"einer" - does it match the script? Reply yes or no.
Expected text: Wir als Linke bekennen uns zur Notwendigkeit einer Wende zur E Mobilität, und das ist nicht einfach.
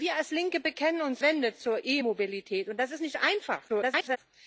no